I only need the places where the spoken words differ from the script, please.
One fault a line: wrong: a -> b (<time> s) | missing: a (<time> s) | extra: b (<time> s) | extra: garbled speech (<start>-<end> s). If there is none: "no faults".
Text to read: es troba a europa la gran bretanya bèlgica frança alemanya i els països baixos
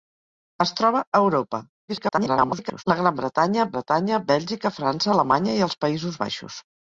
extra: garbled speech (1.9-2.8 s)
extra: bretanya (3.7 s)